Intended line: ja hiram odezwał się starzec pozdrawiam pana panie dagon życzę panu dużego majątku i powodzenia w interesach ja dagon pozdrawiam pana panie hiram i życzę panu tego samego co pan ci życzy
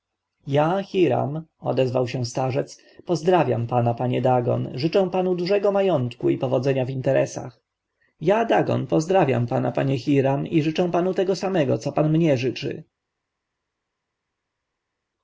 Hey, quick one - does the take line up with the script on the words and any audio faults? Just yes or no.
no